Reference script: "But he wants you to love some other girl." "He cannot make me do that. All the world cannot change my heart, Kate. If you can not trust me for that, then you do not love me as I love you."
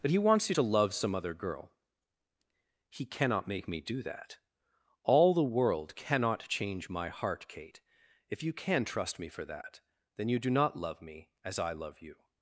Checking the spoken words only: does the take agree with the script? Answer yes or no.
no